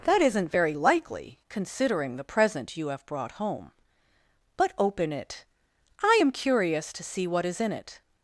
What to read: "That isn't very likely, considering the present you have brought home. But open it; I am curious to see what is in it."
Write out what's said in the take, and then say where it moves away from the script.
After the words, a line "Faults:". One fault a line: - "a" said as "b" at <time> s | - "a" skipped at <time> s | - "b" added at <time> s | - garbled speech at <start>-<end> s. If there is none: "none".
"That isn't very likely, considering the present you have brought home. But open it; I am curious to see what is in it."
Faults:
none